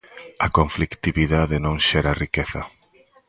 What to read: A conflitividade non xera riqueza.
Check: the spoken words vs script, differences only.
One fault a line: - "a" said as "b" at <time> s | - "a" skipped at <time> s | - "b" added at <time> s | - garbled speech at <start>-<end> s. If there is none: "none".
none